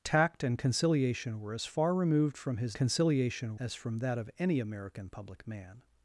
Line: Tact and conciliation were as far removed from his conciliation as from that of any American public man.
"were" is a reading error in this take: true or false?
false